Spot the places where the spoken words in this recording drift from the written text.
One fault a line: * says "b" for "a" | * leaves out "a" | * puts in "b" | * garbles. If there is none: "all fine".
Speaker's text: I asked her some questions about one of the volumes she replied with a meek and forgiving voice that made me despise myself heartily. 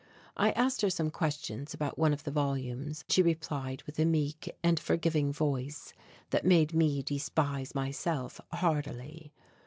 all fine